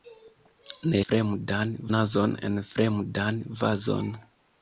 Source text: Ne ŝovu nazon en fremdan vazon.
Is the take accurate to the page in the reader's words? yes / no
no